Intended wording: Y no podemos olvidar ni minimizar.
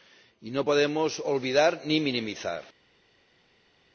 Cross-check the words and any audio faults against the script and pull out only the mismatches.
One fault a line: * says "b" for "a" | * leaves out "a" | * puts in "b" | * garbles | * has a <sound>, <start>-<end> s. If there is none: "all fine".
all fine